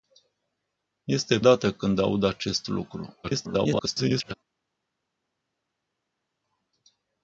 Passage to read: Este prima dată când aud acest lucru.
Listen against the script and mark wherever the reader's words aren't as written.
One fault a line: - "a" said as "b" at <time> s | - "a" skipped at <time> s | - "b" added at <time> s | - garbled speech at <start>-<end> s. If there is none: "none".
- "prima" skipped at 1.4 s
- garbled speech at 3.2-4.3 s